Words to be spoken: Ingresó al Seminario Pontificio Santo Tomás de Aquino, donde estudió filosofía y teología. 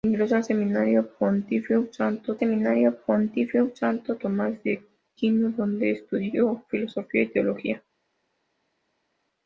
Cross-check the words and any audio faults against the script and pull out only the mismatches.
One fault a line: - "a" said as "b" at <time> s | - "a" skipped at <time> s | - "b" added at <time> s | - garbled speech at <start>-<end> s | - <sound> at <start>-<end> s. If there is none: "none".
- "Seminario Pontificio Santo" added at 2.4 s